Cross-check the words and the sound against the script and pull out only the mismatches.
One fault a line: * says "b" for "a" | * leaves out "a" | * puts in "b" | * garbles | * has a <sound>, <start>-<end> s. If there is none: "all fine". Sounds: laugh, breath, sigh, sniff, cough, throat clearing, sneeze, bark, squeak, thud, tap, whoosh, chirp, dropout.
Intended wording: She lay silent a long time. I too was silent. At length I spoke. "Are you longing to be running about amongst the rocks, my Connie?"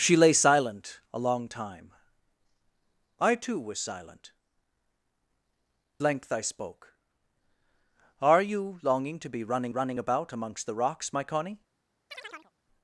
* leaves out "At"
* puts in "running"
* has a chirp, 12.1-12.5 s